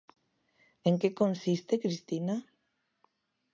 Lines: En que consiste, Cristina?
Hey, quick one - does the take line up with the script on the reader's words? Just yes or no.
yes